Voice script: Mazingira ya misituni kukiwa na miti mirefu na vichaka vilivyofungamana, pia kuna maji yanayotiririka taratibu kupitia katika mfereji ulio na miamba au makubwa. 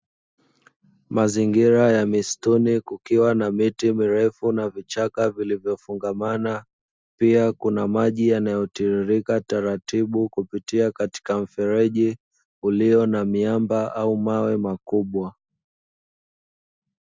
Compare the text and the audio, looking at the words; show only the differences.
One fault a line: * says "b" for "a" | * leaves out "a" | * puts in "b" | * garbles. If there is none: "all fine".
* puts in "mawe"